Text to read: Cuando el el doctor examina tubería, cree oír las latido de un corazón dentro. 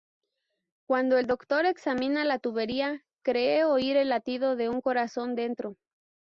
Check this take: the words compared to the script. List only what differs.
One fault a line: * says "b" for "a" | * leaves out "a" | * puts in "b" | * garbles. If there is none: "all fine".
* leaves out "el"
* puts in "la"
* says "el" for "las"